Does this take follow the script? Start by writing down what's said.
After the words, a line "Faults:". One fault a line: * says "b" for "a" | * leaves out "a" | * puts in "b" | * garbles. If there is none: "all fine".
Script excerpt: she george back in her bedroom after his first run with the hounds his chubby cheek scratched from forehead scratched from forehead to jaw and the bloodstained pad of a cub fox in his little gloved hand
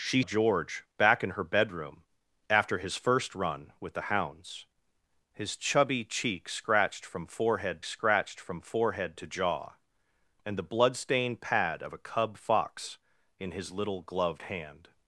she george back in her bedroom after his first run with the hounds his chubby cheek scratched from forehead scratched from forehead to jaw and the bloodstained pad of a cub fox in his little gloved hand
Faults:
all fine